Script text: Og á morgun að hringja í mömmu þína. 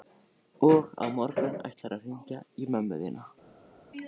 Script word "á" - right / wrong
right